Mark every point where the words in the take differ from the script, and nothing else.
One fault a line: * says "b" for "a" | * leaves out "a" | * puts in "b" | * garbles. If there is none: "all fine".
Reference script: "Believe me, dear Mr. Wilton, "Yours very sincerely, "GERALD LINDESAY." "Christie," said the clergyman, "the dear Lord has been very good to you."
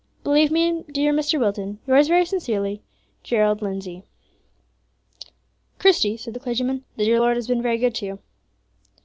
all fine